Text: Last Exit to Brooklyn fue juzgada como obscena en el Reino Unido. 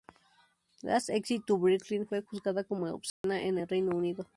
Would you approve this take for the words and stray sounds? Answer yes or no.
no